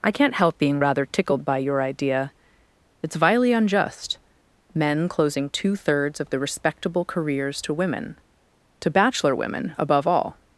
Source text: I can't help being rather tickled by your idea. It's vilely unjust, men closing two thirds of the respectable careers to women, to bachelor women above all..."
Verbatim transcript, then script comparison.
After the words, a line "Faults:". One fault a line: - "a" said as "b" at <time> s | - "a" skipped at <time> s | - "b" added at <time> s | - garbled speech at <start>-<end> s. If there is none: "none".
I can't help being rather tickled by your idea. It's vilely unjust, men closing two thirds of the respectable careers to women, to bachelor women above all..."
Faults:
none